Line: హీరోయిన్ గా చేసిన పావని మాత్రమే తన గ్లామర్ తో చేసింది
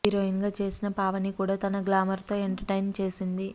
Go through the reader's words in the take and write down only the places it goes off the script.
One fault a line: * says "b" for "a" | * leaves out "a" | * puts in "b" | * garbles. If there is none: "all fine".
* says "కూడా" for "మాత్రమే"
* puts in "ఎంటర్టైన్"